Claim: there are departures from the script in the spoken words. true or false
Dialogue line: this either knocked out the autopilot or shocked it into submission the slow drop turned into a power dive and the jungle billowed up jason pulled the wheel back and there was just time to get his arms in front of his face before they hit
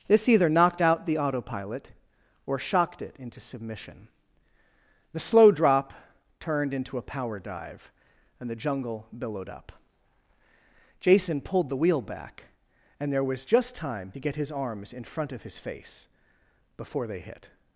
false